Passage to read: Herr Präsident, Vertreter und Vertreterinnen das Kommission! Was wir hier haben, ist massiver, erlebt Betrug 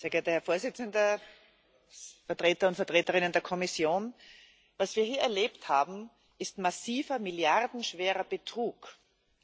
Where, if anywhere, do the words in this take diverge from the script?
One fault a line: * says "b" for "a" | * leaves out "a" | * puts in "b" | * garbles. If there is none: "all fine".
* says "der" for "das"
* puts in "erlebt"
* says "milliardenschwerer" for "erlebt"